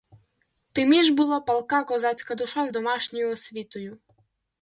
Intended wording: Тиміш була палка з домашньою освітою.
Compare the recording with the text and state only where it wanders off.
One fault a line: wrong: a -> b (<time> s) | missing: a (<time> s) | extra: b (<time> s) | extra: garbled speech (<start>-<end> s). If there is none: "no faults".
extra: козацька душа (1.8 s)